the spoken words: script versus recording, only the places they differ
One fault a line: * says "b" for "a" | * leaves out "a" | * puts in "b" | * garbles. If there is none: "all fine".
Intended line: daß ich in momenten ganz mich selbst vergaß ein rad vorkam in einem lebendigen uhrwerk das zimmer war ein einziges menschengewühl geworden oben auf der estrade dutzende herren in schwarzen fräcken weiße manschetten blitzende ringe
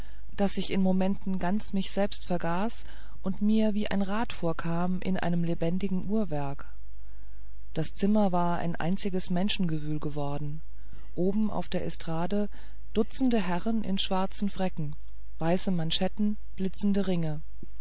* puts in "und mir wie"